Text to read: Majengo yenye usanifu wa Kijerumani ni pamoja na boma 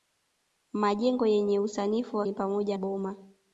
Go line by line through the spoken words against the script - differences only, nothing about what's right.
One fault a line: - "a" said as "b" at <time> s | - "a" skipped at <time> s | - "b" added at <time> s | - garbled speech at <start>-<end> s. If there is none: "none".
- "Kijerumani" skipped at 2.3 s
- "na" skipped at 2.8 s